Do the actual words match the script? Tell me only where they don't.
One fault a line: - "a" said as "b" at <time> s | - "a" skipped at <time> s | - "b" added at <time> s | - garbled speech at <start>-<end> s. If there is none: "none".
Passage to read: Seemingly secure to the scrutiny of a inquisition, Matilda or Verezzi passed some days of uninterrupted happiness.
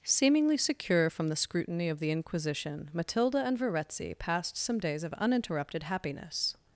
- "to" said as "from" at 1.1 s
- "a" said as "the" at 2.0 s
- "or" said as "and" at 3.5 s